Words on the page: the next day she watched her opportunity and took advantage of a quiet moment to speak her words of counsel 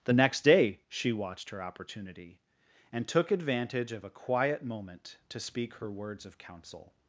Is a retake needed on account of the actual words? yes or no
no